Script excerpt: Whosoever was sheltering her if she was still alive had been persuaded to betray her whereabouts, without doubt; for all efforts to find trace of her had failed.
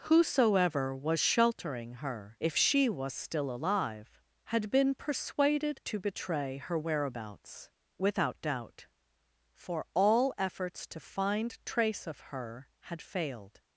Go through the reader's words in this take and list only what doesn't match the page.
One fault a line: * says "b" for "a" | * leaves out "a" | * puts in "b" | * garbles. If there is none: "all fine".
all fine